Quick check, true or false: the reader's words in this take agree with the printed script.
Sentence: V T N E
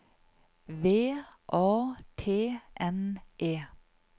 false